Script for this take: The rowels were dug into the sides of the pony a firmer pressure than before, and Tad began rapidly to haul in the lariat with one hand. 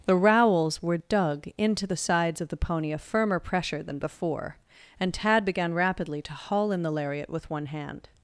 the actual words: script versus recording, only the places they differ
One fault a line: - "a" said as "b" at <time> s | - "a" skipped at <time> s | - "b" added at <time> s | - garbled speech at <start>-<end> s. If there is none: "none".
none